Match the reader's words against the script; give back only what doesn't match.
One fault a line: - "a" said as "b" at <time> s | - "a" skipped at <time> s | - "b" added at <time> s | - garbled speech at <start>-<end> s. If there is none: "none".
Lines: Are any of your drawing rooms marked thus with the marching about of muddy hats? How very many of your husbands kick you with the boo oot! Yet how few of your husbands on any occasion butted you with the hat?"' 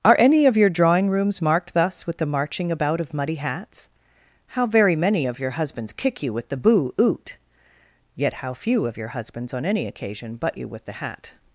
- "butted" said as "butt" at 10.4 s